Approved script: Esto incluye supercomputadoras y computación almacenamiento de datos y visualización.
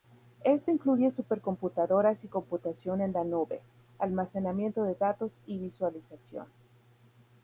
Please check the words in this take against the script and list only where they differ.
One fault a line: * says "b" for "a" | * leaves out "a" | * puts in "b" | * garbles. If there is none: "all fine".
* puts in "en la nube"